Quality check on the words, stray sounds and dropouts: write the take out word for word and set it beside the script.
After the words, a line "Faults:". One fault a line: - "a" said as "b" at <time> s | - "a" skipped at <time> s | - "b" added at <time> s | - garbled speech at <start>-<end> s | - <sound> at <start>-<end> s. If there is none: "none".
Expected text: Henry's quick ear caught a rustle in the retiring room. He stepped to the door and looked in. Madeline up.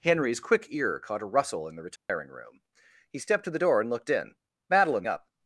Henry's quick ear caught a rustle in the retiring room. He stepped to the door and looked in. Madeline up.
Faults:
- dropout at 2.0-2.1 s